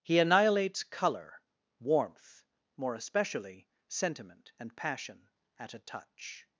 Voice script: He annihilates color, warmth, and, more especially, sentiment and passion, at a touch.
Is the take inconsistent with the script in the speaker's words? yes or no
yes